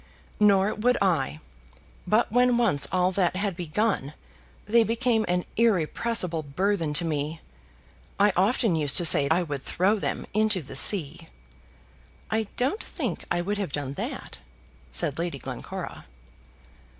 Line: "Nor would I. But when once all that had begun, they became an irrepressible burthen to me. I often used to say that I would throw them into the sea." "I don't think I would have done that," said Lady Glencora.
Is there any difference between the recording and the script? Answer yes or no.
yes